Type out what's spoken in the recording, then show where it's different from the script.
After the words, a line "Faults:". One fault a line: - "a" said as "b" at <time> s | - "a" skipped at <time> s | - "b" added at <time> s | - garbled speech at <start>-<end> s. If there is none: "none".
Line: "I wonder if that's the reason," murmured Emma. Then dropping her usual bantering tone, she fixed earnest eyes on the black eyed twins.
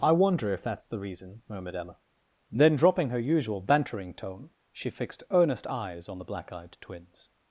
"I wonder if that's the reason," murmured Emma. Then dropping her usual bantering tone, she fixed earnest eyes on the black eyed twins.
Faults:
none